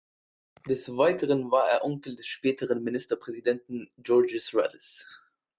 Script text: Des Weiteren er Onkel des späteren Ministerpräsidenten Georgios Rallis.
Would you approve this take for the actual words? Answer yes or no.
no